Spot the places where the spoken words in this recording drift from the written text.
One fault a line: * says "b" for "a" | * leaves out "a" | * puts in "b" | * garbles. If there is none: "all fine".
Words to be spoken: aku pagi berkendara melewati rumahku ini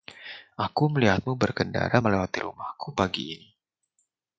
* says "melihatmu" for "pagi"
* puts in "pagi"